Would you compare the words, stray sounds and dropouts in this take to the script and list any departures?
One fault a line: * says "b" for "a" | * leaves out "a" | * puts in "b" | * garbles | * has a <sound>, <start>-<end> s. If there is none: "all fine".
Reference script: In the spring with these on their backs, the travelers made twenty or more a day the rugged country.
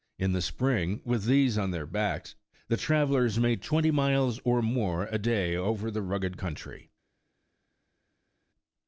* puts in "miles"
* puts in "over"